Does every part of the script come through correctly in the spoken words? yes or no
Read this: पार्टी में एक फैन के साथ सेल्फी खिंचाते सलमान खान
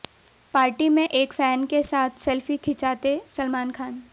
yes